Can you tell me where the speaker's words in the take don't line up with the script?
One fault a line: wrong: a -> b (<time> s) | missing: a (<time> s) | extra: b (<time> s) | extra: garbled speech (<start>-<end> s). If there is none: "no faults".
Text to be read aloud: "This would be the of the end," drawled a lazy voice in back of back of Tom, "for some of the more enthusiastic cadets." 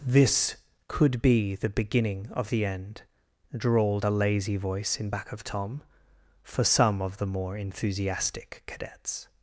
wrong: would -> could (0.9 s)
extra: beginning (1.7 s)
missing: back of (5.4 s)